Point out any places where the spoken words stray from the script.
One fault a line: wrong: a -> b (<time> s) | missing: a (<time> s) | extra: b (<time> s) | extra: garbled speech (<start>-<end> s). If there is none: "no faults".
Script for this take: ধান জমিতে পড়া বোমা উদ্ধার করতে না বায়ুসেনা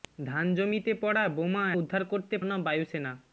no faults